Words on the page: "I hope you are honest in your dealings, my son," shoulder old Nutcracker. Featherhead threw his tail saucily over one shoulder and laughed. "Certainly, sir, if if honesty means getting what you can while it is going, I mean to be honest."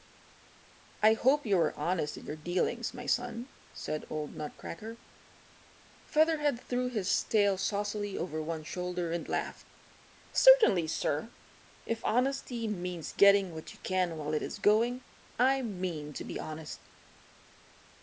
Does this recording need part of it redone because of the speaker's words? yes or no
yes